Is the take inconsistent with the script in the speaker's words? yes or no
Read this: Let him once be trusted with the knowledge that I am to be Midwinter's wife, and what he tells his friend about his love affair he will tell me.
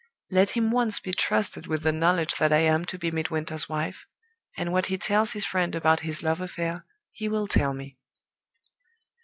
no